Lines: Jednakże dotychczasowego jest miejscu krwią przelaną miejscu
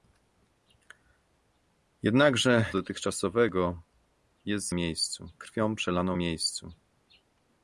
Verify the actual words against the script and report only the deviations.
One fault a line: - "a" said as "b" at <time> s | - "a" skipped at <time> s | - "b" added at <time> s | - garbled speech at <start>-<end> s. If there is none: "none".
none